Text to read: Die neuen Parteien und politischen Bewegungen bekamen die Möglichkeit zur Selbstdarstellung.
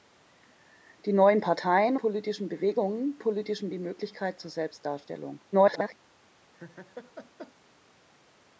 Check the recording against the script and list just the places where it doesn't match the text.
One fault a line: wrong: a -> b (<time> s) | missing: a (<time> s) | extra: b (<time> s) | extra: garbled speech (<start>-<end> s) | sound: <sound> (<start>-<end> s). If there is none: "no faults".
missing: und (1.9 s)
wrong: bekamen -> politischen (3.2 s)
extra: garbled speech (5.5-6.0 s)
sound: laugh (6.5-7.5 s)